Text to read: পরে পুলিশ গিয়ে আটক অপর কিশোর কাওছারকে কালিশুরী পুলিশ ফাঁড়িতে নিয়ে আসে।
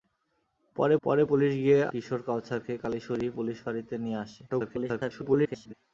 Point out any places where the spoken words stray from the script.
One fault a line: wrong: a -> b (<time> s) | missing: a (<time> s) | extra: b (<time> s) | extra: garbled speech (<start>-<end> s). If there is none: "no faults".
extra: পরে (1.0 s)
missing: আটক অপর (1.8 s)
extra: garbled speech (4.5-5.7 s)